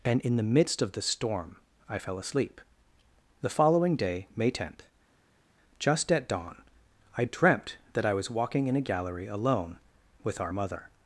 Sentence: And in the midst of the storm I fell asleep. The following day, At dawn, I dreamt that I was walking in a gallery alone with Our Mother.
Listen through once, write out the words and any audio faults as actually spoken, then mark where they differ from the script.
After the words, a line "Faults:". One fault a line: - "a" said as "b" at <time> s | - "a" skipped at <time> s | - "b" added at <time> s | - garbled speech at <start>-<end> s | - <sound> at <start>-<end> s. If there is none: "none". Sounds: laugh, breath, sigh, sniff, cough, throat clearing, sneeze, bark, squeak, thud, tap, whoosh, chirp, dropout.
And in the midst of the storm I fell asleep. The following day, May tenth, just at dawn, I dreamt that I was walking in a gallery alone with Our Mother.
Faults:
- "May tenth just" added at 4.4 s